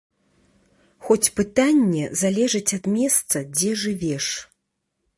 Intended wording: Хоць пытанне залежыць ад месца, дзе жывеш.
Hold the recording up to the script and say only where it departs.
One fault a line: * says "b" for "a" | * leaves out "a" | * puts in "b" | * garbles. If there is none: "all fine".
all fine